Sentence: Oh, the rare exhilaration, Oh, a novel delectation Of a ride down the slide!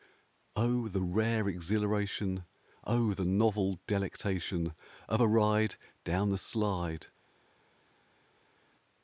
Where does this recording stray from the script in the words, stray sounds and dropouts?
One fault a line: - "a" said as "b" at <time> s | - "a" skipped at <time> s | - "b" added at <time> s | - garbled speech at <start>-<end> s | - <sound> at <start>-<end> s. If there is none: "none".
- "a" said as "the" at 3.1 s